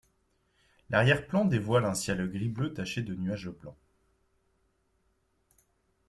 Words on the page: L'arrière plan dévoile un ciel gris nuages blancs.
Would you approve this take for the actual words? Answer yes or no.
no